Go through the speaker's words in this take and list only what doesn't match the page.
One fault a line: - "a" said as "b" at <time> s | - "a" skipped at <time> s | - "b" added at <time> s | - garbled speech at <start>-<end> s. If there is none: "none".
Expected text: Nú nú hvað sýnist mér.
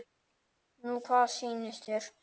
- "nú" skipped at 1.0 s
- "mér" said as "þér" at 1.9 s